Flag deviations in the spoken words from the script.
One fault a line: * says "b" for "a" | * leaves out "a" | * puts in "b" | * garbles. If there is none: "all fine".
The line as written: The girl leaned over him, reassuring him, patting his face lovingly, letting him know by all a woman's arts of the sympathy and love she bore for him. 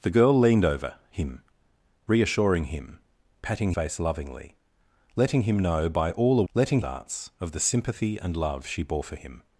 * leaves out "his"
* says "letting" for "woman's"